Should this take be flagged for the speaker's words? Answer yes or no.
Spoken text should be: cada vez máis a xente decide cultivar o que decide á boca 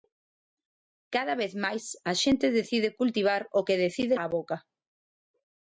no